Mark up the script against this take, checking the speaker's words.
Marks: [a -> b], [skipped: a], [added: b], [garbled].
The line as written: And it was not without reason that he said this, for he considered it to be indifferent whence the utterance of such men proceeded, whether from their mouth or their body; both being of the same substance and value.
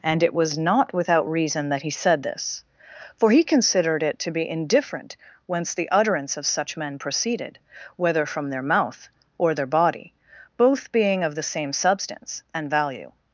And it was not without reason that he said this, for he considered it to be indifferent whence the utterance of such men proceeded, whether from their mouth or their body; both being of the same substance and value.